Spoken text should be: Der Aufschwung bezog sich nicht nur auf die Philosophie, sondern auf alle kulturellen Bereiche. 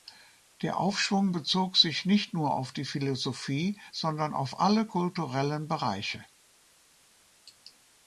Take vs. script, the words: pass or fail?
pass